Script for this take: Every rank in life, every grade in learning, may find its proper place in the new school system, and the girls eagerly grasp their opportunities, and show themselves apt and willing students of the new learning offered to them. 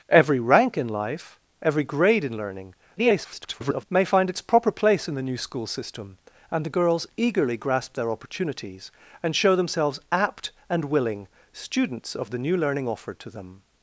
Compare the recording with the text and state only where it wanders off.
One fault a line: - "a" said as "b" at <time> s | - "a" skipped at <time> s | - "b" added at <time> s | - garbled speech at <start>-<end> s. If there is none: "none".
- garbled speech at 3.0-3.9 s